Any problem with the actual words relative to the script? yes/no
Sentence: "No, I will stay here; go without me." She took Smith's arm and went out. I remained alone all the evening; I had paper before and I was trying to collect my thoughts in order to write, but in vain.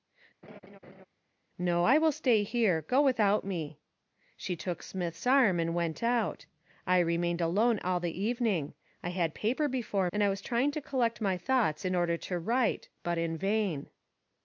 no